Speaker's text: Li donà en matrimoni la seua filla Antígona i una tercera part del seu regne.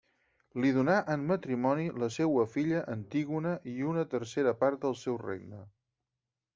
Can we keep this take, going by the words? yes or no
yes